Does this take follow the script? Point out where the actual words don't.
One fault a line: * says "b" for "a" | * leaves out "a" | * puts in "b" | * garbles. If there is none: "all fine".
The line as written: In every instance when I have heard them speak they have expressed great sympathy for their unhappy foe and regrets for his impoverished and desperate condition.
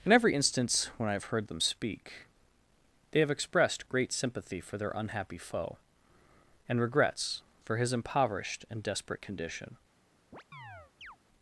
all fine